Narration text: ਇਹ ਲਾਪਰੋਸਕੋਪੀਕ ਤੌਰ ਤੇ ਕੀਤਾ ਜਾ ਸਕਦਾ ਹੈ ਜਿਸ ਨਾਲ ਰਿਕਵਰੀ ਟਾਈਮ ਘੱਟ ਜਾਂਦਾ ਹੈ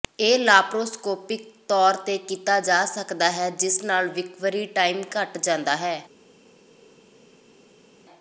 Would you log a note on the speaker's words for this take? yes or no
no